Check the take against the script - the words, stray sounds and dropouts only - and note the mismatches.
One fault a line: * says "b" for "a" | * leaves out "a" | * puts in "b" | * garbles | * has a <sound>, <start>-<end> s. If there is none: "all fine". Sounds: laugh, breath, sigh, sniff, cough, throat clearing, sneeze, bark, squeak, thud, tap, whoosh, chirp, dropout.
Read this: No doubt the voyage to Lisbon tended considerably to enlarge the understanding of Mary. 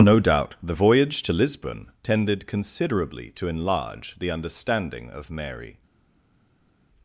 all fine